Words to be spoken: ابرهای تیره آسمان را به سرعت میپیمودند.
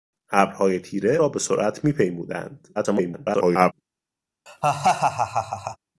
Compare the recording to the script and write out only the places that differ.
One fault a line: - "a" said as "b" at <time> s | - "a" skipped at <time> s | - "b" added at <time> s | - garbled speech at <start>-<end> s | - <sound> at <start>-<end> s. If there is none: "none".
- "آسمان" skipped at 1.2 s
- garbled speech at 2.8-3.7 s
- laugh at 4.5-5.8 s